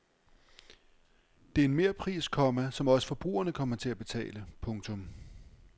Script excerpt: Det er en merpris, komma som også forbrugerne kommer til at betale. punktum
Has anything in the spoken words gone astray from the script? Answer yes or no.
no